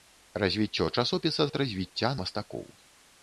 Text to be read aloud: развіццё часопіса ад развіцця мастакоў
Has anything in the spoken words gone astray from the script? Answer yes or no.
no